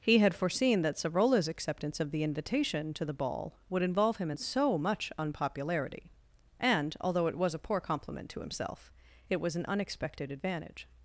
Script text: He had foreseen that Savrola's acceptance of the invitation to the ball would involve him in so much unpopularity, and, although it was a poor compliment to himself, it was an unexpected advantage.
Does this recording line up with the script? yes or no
yes